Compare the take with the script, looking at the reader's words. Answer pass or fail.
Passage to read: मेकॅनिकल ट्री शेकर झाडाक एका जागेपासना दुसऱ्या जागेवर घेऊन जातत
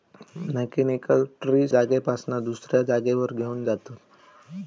fail